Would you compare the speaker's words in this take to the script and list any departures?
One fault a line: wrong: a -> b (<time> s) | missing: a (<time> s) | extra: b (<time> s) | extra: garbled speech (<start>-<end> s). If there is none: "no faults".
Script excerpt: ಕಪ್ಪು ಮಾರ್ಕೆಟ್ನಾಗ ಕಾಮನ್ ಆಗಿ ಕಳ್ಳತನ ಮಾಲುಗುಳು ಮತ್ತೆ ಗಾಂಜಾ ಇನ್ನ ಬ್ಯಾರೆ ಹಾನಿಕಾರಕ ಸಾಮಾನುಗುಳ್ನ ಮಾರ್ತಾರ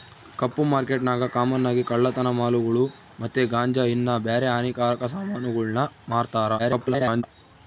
extra: garbled speech (6.6-7.2 s)